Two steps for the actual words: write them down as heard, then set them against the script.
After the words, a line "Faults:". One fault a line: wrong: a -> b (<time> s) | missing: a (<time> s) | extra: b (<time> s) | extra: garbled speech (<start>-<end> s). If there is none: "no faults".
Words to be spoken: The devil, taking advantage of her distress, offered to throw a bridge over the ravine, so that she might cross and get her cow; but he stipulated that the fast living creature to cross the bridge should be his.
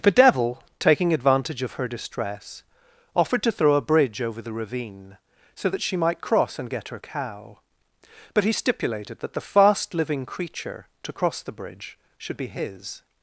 The devil, taking advantage of her distress, offered to throw a bridge over the ravine, so that she might cross and get her cow; but he stipulated that the fast living creature to cross the bridge should be his.
Faults:
no faults